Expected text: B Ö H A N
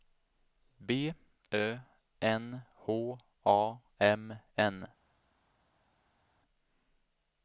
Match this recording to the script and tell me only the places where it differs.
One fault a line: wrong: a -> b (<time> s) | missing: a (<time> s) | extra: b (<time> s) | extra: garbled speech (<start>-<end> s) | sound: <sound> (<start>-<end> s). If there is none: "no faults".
extra: N (2.2 s)
extra: M (4.0 s)